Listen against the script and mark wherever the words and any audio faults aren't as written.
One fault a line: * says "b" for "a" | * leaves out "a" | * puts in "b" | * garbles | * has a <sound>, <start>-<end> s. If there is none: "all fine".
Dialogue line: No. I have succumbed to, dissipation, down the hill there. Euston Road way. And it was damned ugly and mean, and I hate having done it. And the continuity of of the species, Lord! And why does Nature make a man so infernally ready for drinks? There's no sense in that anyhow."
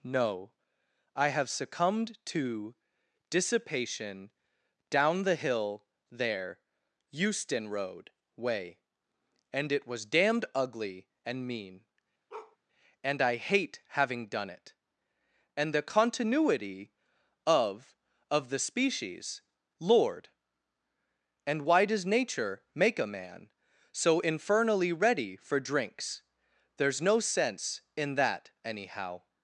* has a bark, 12.3-12.6 s